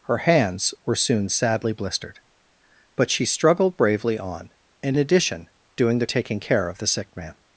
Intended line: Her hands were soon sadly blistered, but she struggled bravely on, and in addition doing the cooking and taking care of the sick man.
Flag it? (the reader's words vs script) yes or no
yes